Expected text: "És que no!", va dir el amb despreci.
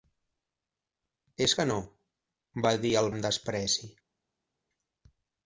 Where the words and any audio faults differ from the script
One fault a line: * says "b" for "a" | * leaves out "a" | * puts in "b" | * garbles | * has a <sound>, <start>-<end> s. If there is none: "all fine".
all fine